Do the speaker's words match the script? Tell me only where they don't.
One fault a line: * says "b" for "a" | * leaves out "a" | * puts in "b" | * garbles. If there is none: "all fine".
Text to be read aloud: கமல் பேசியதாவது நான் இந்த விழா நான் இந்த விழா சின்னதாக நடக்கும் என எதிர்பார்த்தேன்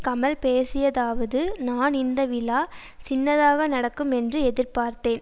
* leaves out "நான் இந்த விழா"
* says "என்று" for "என"